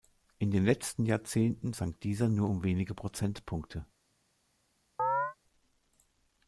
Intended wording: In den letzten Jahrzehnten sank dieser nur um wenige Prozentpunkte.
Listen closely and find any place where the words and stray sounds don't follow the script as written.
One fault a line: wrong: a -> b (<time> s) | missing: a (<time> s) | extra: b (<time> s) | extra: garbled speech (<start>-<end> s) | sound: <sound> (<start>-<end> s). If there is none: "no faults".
sound: chirp (5.0-5.4 s)